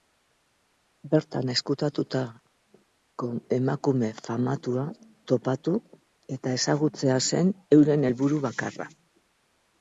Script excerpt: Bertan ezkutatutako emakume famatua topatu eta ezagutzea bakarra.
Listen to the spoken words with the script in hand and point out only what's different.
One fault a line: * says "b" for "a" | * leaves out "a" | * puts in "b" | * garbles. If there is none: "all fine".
* puts in "zen euren helburu"